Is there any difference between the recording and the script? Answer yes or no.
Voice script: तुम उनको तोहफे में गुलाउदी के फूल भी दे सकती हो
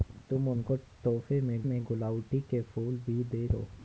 yes